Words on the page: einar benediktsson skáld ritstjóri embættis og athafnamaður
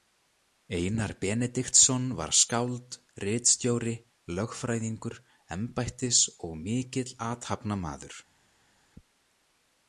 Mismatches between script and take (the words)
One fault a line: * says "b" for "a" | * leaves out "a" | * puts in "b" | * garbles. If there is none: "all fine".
* puts in "var"
* puts in "lögfræðingur"
* puts in "mikill"